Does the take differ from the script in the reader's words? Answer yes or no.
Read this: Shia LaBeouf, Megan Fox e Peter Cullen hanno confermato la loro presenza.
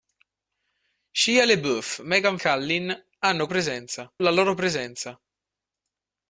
yes